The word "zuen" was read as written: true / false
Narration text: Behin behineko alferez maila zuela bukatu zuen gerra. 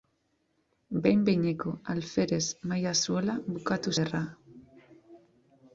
false